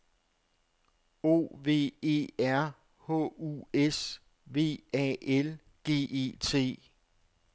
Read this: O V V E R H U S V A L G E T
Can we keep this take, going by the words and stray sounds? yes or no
no